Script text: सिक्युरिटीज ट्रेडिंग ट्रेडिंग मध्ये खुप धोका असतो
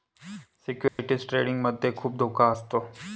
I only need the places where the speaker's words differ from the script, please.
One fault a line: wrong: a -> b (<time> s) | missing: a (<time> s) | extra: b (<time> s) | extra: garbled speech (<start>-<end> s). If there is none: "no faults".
missing: ट्रेडिंग (1.6 s)